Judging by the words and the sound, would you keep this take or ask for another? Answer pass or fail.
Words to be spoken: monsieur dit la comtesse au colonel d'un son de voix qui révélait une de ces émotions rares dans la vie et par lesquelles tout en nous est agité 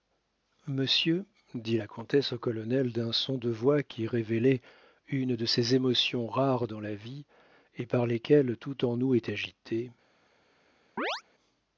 fail